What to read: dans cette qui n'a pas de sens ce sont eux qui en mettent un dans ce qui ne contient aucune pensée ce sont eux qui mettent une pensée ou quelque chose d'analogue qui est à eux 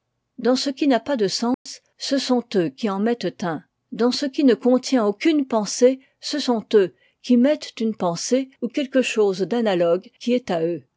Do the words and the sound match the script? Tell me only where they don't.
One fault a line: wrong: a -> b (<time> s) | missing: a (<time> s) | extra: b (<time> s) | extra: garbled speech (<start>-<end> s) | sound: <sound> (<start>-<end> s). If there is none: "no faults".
wrong: cette -> ce (0.6 s)
sound: dropout (1.5-1.7 s)